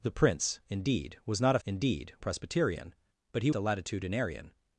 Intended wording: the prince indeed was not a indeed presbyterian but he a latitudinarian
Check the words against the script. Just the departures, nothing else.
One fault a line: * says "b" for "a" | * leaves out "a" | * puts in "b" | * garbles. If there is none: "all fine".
all fine